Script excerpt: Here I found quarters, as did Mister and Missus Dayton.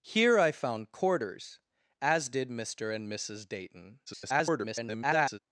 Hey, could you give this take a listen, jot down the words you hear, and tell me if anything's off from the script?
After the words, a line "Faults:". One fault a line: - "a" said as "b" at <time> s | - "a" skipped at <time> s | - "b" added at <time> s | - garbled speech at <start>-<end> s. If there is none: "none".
Here I found quarters, as did Mister and Missus Dayton. [garbled]
Faults:
- garbled speech at 4.1-5.4 s